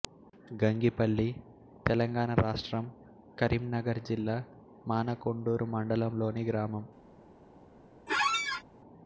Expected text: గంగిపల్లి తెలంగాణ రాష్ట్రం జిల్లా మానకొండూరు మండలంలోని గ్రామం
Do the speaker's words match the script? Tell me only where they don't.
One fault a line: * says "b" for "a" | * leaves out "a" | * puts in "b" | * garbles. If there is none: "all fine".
* puts in "కరీంనగర్"